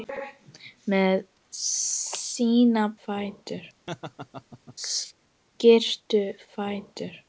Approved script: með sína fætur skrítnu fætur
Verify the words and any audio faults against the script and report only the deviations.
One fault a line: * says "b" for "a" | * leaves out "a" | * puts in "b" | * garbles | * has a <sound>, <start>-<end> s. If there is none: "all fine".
* has a laugh, 3.9-4.8 s